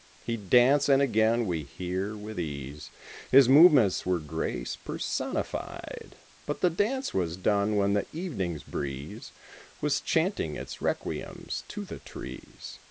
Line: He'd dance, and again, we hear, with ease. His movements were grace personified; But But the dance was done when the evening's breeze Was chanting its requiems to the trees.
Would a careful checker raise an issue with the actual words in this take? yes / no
yes